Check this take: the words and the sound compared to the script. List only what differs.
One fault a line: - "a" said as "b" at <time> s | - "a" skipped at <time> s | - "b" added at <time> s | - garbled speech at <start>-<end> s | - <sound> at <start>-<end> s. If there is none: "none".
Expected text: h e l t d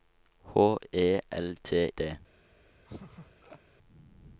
- laugh at 2.9-3.6 s